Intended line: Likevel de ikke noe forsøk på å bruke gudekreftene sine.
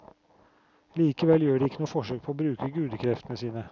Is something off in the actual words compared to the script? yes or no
yes